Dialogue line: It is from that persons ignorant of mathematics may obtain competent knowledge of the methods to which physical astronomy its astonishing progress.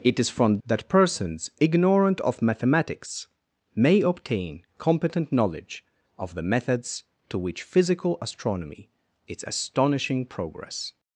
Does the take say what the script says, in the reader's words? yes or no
yes